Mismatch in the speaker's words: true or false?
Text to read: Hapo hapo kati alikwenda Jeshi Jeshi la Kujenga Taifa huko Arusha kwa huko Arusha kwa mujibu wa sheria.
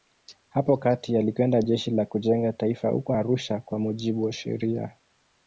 true